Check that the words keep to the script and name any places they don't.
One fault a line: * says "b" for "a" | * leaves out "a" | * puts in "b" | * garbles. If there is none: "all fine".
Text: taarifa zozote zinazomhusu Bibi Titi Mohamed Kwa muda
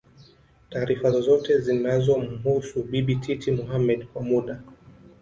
all fine